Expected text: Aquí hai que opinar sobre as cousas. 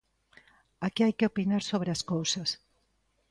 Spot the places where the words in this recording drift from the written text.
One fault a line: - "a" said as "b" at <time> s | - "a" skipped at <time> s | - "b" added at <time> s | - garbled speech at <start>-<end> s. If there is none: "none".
none